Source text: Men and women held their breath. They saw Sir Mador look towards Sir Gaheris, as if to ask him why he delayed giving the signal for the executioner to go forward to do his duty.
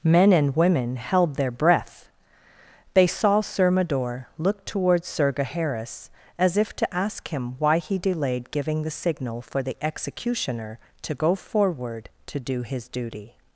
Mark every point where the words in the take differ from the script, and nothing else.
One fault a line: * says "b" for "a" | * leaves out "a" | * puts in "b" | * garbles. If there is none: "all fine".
all fine